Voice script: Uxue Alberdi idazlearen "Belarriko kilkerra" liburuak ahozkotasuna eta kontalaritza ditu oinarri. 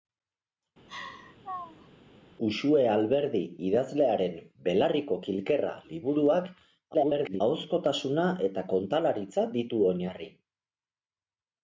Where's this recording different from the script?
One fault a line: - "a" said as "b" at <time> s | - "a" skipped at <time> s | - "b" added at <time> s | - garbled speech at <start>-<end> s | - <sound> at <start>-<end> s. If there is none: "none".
- laugh at 0.9-1.9 s
- garbled speech at 6.9-7.4 s